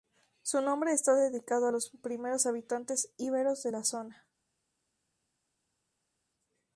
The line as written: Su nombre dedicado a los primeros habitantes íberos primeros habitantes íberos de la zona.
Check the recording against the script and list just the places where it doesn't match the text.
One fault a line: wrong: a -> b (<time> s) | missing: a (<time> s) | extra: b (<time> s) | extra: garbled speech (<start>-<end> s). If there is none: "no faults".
extra: está (0.9 s)
missing: primeros habitantes íberos (3.6 s)